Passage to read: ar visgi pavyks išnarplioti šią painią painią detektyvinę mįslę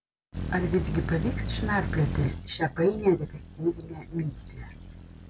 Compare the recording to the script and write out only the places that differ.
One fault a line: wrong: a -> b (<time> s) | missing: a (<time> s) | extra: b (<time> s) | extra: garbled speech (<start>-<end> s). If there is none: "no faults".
missing: painią (3.1 s)